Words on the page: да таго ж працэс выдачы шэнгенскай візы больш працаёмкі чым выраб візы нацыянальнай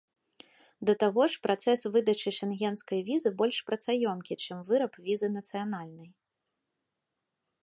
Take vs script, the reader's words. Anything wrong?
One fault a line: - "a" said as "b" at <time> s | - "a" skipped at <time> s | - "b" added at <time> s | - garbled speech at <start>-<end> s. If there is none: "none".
none